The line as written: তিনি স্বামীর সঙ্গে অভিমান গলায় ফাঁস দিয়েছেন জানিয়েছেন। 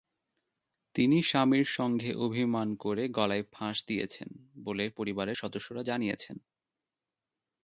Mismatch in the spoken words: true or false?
true